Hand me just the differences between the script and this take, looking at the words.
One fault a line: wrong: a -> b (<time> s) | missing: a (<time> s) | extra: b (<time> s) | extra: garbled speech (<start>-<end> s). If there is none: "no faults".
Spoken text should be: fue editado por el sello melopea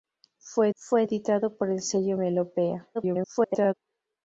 extra: fue (0.7 s)
extra: garbled speech (2.9-3.7 s)